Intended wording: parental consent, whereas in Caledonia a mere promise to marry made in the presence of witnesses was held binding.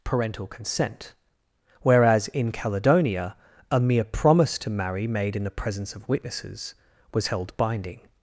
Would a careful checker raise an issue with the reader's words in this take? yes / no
no